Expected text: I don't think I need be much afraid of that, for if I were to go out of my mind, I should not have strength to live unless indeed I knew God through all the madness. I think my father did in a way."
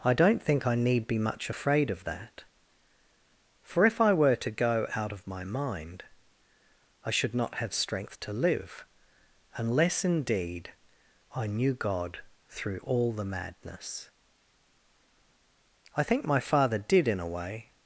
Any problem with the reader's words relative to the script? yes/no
no